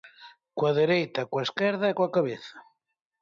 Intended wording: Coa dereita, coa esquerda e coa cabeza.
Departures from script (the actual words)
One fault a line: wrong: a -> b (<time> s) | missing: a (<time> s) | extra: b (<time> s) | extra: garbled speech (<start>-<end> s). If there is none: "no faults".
no faults